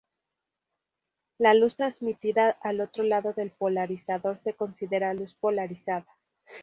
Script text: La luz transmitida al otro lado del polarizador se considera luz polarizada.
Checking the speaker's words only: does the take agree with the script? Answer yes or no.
yes